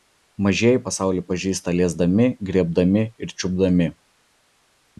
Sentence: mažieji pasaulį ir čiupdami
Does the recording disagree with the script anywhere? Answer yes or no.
yes